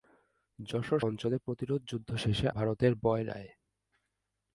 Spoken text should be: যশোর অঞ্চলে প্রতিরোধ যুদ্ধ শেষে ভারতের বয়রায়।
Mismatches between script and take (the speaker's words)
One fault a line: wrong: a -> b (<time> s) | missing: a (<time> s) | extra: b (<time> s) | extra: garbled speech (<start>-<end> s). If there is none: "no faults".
no faults